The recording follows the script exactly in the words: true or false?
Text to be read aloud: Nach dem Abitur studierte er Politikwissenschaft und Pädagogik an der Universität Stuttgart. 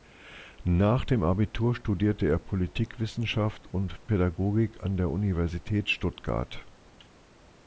true